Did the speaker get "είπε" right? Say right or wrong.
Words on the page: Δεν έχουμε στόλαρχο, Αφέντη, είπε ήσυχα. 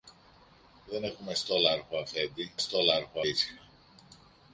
wrong